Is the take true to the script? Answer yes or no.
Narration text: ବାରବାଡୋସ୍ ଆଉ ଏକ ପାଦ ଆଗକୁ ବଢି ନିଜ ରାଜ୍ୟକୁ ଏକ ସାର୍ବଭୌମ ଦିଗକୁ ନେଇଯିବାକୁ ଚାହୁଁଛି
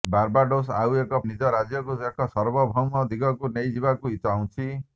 no